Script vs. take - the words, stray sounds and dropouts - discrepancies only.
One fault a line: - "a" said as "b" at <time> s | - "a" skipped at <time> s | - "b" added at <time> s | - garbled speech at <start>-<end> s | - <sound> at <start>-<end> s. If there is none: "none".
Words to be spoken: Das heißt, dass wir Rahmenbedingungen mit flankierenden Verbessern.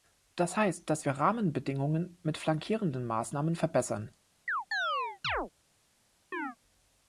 - "Maßnahmen" added at 3.0 s
- chirp at 4.5-5.5 s
- chirp at 6.3-6.6 s